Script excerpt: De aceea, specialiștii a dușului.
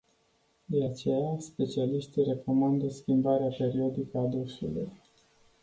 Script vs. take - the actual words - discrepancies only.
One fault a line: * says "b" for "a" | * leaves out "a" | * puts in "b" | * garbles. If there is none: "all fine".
* puts in "recomandă schimbarea periodică"